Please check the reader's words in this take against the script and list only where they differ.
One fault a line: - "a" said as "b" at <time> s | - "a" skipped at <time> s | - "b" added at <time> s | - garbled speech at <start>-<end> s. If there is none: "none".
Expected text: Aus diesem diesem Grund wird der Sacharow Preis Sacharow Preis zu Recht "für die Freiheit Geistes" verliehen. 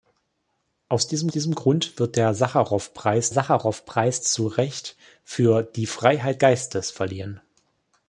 none